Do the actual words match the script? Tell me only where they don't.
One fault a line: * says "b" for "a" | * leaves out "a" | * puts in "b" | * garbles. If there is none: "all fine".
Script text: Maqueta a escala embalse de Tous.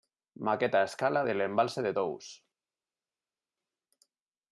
* puts in "del"